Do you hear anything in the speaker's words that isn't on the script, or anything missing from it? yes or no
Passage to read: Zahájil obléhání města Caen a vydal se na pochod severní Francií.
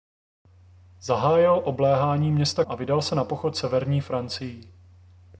yes